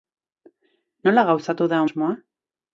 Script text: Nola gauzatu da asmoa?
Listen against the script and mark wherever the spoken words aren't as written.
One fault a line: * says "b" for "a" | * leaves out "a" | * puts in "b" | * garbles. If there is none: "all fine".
all fine